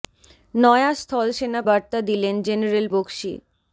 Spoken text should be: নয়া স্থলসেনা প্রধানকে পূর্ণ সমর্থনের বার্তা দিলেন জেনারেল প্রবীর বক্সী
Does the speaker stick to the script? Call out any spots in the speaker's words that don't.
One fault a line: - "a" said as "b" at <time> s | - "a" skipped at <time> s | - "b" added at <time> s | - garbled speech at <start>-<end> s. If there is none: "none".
- "প্রধানকে পূর্ণ সমর্থনের" skipped at 1.6 s
- "প্রবীর" skipped at 2.9 s